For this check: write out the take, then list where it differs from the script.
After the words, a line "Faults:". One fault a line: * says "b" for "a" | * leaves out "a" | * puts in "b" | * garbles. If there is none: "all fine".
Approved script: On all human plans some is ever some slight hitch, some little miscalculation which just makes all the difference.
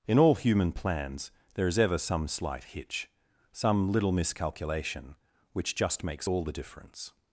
In all human plans there is ever some slight hitch, some little miscalculation which just makes all the difference.
Faults:
* says "In" for "On"
* says "there" for "some"